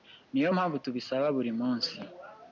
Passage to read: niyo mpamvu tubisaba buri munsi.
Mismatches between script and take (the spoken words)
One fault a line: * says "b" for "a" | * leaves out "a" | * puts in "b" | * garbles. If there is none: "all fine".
all fine